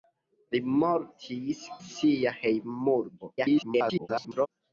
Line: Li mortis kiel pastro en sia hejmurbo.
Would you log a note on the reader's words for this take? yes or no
yes